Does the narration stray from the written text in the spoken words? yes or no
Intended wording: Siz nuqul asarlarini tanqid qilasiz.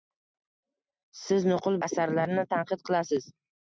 no